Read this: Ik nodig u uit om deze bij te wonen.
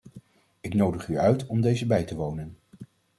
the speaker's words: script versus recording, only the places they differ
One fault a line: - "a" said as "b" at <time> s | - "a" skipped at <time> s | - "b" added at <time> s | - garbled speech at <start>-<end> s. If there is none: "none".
none